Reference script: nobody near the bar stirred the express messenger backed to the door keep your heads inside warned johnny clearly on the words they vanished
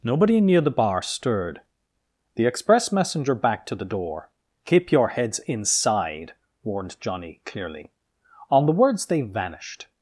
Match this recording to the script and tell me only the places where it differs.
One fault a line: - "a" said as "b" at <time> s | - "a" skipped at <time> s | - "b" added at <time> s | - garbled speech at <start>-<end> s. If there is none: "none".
none